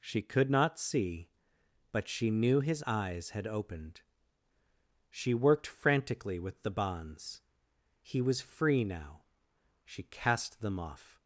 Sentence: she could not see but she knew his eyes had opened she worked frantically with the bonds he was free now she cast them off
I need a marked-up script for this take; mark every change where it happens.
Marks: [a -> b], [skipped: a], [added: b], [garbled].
she could not see but she knew his eyes had opened she worked frantically with the bonds he was free now she cast them off